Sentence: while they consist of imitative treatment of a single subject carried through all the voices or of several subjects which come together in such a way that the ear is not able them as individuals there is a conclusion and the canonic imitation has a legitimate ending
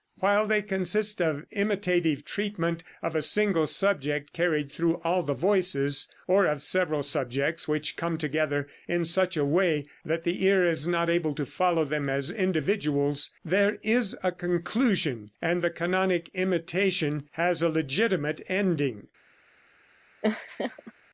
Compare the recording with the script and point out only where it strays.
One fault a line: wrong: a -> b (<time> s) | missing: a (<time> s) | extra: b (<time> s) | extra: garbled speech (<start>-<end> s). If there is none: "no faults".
extra: to follow (11.3 s)